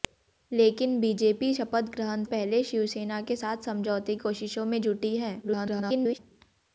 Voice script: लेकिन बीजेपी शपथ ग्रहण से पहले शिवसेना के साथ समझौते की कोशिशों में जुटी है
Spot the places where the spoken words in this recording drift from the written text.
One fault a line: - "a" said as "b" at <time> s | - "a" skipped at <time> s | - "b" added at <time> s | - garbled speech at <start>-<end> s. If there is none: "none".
- "से" skipped at 2.2 s
- "की" skipped at 4.2 s
- garbled speech at 5.4-6.2 s